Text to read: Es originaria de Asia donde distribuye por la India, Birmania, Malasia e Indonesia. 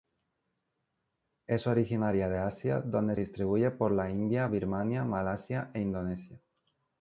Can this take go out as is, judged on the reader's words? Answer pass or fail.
pass